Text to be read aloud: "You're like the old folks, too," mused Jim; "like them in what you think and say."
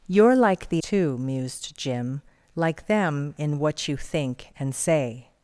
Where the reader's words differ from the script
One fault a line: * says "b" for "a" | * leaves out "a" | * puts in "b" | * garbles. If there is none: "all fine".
* leaves out "old folks"